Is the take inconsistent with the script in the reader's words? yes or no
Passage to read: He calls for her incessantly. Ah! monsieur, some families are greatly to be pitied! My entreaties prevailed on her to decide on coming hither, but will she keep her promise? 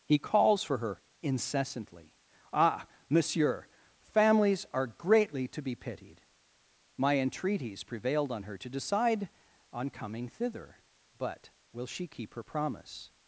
yes